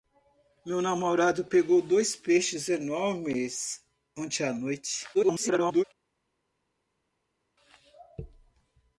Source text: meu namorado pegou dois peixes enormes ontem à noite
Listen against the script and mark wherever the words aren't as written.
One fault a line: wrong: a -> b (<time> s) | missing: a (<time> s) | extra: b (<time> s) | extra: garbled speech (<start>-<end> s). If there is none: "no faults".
extra: garbled speech (5.1-5.8 s)